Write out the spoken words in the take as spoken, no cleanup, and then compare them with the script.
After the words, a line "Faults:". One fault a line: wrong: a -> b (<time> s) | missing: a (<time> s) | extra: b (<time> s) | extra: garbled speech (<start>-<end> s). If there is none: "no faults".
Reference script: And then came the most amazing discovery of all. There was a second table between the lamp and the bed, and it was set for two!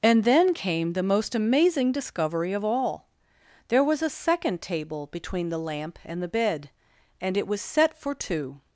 And then came the most amazing discovery of all. There was a second table between the lamp and the bed, and it was set for two!
Faults:
no faults